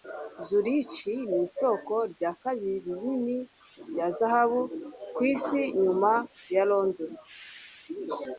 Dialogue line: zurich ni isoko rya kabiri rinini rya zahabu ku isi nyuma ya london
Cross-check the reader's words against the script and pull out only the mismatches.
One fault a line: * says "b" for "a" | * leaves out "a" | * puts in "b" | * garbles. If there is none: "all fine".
all fine